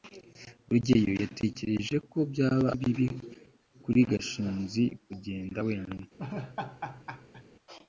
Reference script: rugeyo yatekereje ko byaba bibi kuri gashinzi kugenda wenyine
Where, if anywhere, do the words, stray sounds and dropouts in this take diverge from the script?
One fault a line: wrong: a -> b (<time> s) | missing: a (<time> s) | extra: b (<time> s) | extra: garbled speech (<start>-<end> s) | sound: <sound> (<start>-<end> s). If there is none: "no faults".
sound: laugh (6.2-7.4 s)